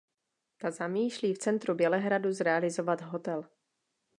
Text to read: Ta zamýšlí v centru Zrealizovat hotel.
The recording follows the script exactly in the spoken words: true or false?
false